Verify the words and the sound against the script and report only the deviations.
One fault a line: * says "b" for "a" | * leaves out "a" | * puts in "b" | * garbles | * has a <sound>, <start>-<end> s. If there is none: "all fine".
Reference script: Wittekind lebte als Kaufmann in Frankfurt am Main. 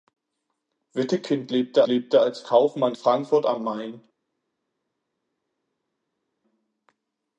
* puts in "lebte"
* leaves out "in"